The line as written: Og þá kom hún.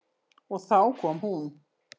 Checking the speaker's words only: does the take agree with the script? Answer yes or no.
yes